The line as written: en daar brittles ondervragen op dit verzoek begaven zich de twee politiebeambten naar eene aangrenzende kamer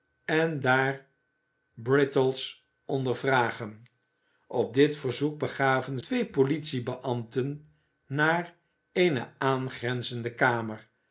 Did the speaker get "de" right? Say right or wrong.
wrong